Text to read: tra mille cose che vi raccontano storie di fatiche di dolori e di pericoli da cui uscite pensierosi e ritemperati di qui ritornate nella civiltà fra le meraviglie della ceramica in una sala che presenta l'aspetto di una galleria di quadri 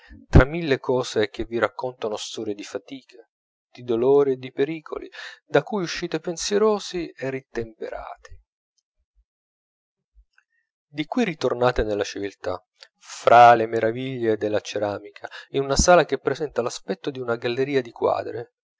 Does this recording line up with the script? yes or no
yes